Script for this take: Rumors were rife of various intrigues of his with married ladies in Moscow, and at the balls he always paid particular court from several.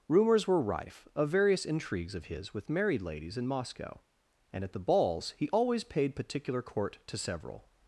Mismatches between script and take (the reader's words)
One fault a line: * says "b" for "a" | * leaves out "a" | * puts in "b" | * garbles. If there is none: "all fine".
* says "to" for "from"